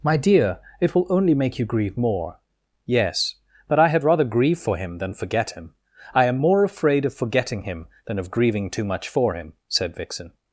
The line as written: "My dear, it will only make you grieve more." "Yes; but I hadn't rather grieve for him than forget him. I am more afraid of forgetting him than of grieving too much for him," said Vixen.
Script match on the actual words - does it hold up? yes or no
no